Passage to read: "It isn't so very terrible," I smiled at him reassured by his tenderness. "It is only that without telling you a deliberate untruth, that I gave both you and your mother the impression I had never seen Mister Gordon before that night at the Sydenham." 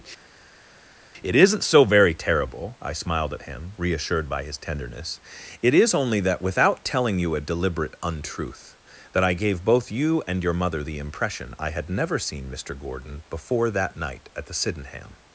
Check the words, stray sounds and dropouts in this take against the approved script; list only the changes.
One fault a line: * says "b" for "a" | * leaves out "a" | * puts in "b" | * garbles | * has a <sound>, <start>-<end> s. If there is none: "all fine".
all fine